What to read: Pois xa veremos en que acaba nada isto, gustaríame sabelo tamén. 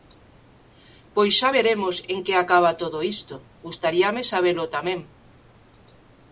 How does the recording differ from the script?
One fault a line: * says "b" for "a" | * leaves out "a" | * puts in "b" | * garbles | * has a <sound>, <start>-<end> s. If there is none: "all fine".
* says "todo" for "nada"